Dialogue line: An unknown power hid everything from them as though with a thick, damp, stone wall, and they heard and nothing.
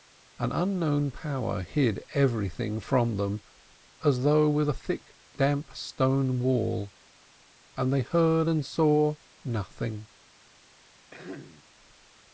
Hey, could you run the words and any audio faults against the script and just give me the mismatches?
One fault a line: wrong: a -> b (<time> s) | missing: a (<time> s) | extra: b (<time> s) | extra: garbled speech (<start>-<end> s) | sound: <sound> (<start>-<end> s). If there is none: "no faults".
extra: saw (8.7 s)
sound: throat clearing (11.1-11.6 s)